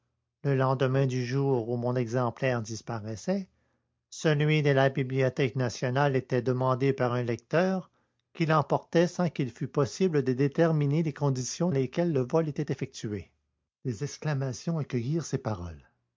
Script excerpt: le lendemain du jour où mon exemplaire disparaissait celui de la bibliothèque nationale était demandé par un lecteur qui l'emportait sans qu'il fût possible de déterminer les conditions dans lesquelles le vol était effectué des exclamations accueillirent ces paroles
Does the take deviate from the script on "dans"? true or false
true